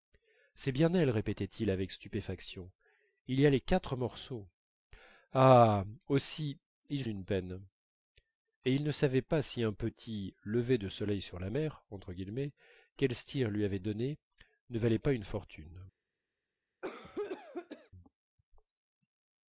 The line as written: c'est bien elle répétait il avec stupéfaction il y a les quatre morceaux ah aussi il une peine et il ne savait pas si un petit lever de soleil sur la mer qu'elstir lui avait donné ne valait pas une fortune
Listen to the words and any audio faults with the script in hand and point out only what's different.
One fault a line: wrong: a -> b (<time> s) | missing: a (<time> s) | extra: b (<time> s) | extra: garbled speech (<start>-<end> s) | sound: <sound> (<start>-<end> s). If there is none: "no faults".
sound: cough (16.8-17.9 s)